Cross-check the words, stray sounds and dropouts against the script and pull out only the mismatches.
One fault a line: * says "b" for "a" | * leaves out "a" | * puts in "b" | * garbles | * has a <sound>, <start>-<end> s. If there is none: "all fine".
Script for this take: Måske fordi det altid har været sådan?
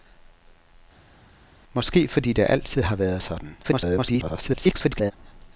* garbles